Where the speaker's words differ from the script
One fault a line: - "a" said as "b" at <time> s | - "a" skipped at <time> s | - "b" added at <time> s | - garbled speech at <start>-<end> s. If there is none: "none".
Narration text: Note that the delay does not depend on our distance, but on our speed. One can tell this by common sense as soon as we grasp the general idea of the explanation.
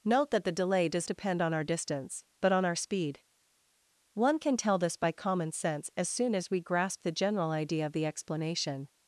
- "not" skipped at 1.1 s